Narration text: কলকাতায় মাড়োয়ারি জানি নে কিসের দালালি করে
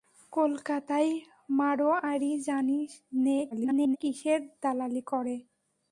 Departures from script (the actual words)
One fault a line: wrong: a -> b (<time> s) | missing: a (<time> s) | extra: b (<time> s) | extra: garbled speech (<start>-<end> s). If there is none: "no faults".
extra: garbled speech (3.5-4.0 s)